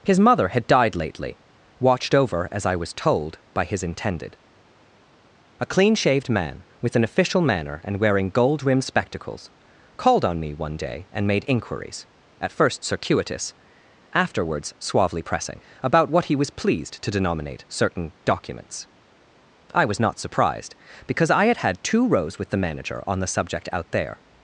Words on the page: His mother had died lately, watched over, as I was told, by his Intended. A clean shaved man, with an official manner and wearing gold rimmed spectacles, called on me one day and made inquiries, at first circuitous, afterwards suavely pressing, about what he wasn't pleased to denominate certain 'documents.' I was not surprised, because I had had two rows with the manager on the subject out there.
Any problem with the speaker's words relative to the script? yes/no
yes